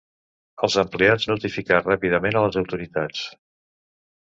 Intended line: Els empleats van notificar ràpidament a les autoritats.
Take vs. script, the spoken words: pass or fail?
fail